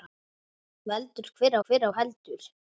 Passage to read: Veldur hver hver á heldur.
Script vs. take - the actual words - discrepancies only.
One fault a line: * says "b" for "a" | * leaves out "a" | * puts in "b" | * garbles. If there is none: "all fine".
all fine